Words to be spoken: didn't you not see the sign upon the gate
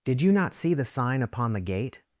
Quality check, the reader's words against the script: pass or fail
fail